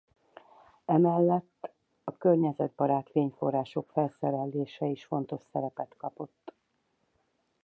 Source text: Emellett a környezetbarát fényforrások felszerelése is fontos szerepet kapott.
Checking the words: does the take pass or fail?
pass